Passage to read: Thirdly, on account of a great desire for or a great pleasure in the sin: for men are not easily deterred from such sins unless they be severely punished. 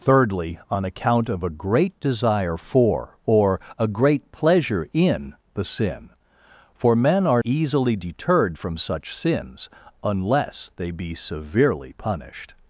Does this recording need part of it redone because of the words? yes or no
yes